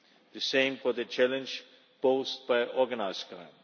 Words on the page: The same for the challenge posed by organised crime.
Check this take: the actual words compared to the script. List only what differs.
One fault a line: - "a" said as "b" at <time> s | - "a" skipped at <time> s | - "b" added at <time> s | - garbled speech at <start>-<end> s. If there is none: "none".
none